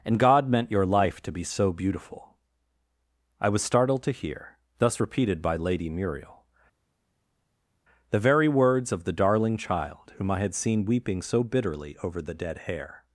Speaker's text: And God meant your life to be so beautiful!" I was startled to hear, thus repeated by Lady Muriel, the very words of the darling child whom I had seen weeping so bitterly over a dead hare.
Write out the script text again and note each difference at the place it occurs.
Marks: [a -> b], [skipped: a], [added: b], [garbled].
And God meant your life to be so beautiful!" I was startled to hear, thus repeated by Lady Muriel, the very words of the darling child whom I had seen weeping so bitterly over [a -> the] dead hare.